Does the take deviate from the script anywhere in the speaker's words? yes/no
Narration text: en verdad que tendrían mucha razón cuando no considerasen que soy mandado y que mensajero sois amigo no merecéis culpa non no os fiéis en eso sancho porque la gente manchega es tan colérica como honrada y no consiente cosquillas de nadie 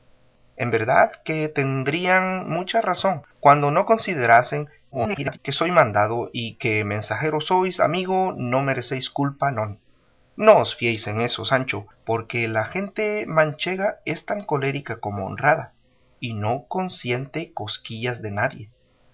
yes